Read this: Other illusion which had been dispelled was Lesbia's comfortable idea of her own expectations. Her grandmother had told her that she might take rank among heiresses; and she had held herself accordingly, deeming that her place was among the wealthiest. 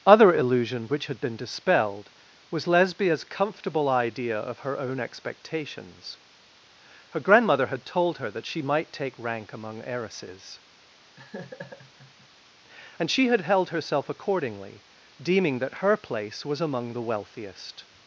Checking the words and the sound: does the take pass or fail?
fail